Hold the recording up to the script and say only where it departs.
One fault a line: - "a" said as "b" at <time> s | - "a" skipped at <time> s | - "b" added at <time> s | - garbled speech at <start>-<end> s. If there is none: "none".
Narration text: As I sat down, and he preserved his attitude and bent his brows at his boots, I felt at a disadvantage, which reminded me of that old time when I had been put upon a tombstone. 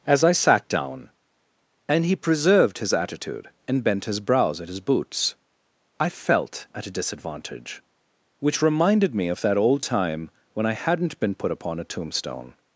- "had" said as "hadn't" at 10.7 s